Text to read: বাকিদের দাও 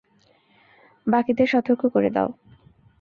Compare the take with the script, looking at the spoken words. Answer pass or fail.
fail